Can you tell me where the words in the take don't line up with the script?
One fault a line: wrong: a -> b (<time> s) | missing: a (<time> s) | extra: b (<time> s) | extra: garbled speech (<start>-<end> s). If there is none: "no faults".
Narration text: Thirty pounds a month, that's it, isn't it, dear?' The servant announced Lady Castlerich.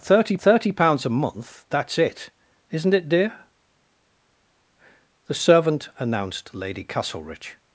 extra: thirty (0.4 s)